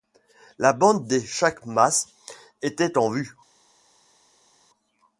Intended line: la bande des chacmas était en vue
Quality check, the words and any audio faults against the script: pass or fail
pass